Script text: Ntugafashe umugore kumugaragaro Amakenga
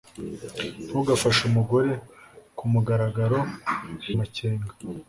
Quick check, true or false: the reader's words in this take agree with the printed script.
true